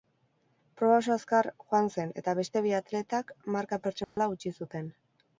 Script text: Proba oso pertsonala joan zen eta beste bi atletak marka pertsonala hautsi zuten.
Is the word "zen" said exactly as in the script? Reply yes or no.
yes